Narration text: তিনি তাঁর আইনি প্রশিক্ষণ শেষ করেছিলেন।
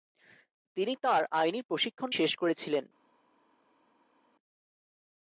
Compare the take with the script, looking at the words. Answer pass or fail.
pass